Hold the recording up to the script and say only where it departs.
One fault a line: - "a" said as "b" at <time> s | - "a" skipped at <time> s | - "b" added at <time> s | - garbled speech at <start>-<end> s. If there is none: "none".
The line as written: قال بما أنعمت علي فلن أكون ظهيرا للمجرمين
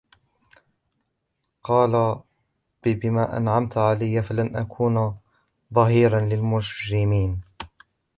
none